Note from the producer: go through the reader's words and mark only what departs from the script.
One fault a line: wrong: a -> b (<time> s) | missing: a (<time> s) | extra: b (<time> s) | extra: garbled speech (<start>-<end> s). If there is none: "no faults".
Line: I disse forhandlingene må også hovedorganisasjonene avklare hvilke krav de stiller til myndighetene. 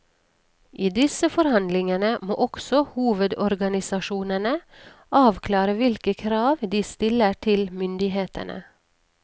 no faults